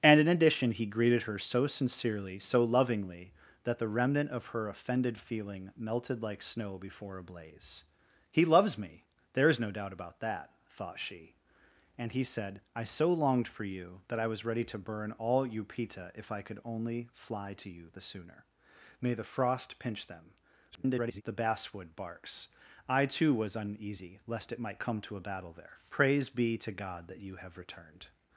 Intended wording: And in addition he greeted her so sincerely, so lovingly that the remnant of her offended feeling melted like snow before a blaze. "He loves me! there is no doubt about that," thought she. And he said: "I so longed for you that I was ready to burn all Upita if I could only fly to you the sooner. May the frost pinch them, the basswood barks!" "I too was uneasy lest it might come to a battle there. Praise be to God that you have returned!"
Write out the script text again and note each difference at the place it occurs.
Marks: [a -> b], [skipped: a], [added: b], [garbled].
And in addition he greeted her so sincerely, so lovingly that the remnant of her offended feeling melted like snow before a blaze. "He loves me! there is no doubt about that," thought she. And he said: "I so longed for you that I was ready to burn all Upita if I could only fly to you the sooner. May the frost pinch them, [garbled] the basswood barks!" "I too was uneasy lest it might come to a battle there. Praise be to God that you have returned!"